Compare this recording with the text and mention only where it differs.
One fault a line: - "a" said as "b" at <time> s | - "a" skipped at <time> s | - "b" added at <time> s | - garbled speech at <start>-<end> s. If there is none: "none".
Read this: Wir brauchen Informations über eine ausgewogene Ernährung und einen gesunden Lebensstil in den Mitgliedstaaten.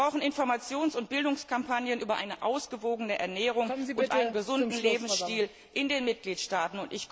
- "und Bildungskampagnen" added at 0.9 s